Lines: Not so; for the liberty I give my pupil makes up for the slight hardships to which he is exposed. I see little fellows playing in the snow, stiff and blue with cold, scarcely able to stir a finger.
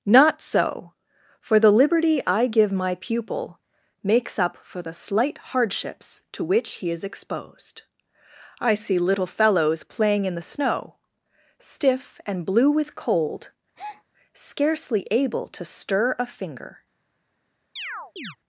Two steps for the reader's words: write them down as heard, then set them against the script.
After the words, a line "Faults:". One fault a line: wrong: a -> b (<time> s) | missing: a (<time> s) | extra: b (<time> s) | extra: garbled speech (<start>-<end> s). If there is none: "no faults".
Not so; for the liberty I give my pupil makes up for the slight hardships to which he is exposed. I see little fellows playing in the snow, stiff and blue with cold, scarcely able to stir a finger.
Faults:
no faults